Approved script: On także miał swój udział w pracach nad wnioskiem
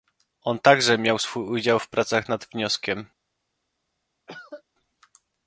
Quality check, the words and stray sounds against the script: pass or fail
fail